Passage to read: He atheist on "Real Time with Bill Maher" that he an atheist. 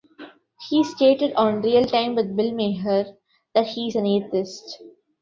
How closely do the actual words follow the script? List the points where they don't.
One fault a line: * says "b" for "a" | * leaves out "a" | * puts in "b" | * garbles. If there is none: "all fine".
* says "stated" for "atheist"
* puts in "is"